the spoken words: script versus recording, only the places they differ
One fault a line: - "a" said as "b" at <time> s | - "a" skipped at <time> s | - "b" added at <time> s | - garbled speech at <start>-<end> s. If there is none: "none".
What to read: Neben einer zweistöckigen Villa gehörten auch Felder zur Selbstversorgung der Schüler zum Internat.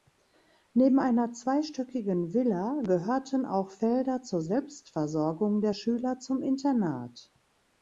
none